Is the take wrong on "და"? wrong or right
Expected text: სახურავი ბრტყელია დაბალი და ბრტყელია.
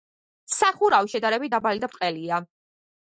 right